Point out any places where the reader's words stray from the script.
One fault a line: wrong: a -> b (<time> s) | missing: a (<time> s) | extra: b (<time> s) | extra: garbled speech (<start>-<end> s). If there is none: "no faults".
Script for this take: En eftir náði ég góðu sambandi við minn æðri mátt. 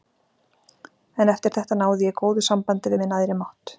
extra: þetta (1.6 s)